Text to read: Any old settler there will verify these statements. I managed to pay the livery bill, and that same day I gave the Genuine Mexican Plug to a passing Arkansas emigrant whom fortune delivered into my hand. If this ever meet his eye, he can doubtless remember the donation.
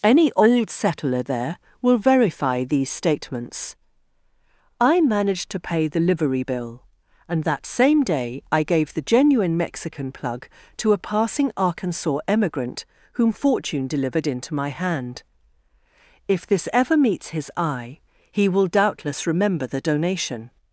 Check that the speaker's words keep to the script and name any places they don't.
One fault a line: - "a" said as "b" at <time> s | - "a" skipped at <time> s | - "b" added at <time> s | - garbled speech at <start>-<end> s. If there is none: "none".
- "meet" said as "meets" at 17.0 s
- "can" said as "will" at 18.5 s